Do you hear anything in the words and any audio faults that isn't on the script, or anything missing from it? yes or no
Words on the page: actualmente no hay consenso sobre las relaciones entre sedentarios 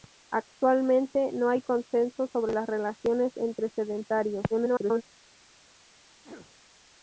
yes